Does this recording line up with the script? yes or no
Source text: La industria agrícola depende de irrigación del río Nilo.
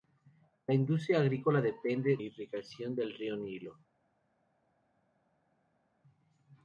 no